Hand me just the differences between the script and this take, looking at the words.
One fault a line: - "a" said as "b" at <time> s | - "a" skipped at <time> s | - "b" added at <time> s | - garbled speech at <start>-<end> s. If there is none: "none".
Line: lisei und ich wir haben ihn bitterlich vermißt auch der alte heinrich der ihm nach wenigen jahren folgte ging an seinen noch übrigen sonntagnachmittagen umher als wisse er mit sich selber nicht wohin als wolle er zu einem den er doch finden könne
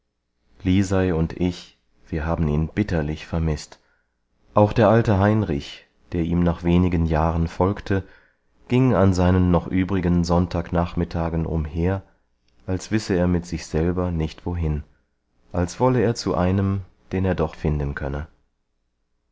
none